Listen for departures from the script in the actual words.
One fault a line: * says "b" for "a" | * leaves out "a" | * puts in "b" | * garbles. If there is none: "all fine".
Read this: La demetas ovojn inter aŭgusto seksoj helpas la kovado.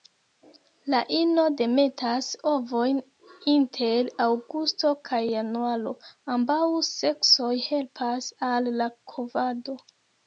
* puts in "ino"
* puts in "kaj januaro ambaŭ"
* puts in "al"